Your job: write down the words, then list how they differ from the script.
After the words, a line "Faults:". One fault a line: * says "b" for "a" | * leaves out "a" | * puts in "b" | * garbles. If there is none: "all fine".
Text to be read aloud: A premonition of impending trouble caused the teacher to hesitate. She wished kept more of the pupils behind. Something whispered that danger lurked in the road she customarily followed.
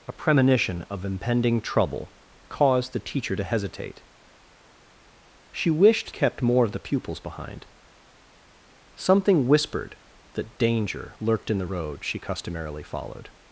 A premonition of impending trouble caused the teacher to hesitate. She wished kept more of the pupils behind. Something whispered that danger lurked in the road she customarily followed.
Faults:
all fine